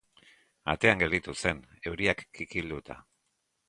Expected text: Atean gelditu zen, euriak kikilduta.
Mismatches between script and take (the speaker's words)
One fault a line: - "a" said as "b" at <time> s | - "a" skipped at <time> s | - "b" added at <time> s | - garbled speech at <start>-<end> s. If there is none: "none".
none